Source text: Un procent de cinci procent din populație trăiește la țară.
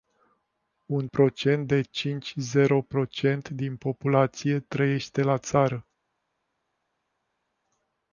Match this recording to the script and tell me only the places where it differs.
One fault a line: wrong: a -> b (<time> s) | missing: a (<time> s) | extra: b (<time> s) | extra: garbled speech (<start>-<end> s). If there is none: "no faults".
extra: zero (2.4 s)